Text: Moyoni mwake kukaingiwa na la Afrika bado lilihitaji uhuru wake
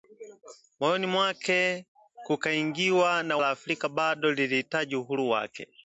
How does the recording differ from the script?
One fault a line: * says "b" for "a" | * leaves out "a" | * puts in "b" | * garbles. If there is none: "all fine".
all fine